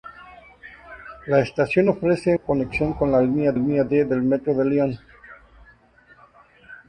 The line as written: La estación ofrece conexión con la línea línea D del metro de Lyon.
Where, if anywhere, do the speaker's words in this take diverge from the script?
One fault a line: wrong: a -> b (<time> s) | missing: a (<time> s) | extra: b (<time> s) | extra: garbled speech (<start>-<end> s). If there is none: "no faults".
no faults